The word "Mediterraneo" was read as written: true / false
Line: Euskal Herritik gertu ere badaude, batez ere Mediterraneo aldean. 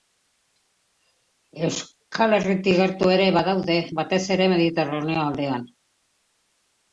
true